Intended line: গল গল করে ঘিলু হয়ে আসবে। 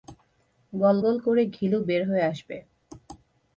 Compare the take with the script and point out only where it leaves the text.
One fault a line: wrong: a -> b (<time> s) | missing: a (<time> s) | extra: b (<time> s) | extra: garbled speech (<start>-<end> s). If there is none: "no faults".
extra: বের (1.8 s)